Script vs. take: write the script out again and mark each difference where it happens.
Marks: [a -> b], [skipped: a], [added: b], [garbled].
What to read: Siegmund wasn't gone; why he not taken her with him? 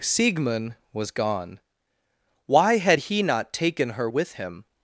Siegmund [wasn't -> was] gone; why [added: had] he not taken her with him?